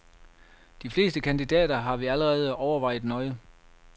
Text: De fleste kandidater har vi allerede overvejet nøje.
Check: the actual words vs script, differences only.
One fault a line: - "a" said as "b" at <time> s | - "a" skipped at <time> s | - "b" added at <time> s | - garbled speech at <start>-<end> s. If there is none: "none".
none